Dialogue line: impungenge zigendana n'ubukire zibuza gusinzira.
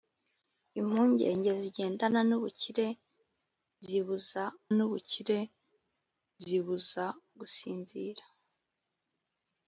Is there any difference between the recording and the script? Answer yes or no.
yes